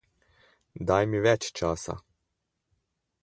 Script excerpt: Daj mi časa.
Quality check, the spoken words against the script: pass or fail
fail